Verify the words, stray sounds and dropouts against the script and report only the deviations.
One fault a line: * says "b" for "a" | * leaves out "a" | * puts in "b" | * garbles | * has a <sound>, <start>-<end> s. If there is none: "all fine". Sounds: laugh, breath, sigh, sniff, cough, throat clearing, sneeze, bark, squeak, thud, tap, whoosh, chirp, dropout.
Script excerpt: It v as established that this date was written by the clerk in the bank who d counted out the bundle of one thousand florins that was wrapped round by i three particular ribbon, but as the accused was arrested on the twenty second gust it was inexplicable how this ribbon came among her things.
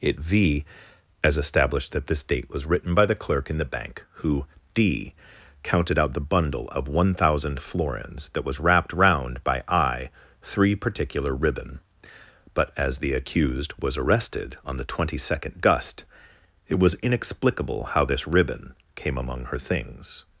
all fine